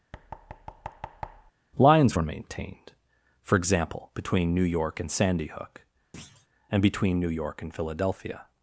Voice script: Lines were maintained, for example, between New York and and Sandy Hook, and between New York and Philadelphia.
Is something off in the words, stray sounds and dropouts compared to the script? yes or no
yes